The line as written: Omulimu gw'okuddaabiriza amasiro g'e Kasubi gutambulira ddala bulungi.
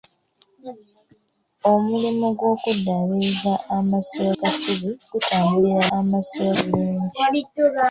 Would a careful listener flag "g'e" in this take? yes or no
yes